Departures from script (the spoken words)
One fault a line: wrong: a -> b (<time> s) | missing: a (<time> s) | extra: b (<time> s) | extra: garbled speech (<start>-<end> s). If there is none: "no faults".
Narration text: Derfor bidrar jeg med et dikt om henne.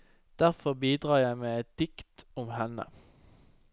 no faults